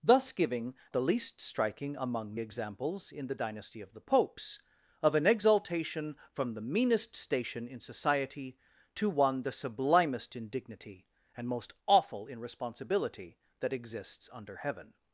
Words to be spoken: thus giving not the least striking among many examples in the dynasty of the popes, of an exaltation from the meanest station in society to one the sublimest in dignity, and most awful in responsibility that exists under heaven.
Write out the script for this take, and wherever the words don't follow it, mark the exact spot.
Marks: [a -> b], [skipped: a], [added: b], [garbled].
thus giving [skipped: not] the least striking among [skipped: many] examples in the dynasty of the popes, of an exaltation from the meanest station in society to one the sublimest in dignity, and most awful in responsibility that exists under heaven.